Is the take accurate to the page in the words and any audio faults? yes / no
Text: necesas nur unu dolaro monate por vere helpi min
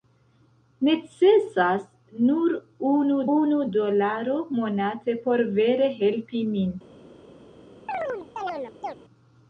no